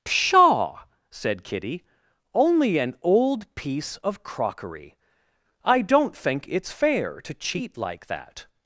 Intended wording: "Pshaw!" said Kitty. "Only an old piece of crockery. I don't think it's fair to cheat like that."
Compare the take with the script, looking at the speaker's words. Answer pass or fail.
pass